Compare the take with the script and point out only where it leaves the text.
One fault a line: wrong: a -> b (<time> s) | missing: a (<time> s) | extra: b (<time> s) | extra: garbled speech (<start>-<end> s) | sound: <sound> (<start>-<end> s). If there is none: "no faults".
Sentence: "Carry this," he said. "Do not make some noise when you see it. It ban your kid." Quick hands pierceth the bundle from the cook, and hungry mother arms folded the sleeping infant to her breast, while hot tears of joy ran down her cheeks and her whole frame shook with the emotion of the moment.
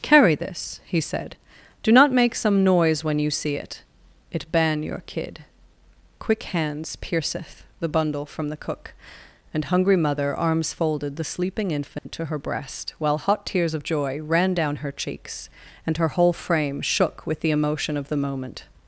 sound: dropout (12.0-12.1 s)